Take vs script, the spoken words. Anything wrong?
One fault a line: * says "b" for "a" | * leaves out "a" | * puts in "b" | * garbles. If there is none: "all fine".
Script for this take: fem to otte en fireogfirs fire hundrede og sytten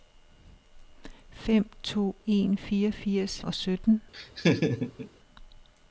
* leaves out "otte"
* leaves out "fire hundrede"